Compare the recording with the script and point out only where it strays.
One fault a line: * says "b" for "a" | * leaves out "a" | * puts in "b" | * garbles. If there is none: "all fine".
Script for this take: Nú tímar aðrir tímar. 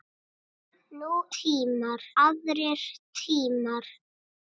all fine